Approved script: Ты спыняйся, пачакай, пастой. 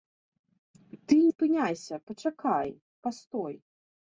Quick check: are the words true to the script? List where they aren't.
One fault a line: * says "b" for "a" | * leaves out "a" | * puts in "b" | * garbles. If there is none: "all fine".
all fine